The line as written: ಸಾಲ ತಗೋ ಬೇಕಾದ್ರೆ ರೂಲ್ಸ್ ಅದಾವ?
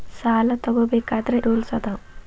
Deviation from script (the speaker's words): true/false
false